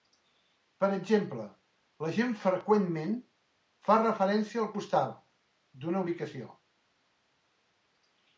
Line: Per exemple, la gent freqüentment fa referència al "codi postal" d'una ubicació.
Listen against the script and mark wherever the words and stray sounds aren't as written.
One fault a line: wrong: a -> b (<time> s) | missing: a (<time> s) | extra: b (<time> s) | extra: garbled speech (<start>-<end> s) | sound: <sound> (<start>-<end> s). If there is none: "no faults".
missing: codi (4.7 s)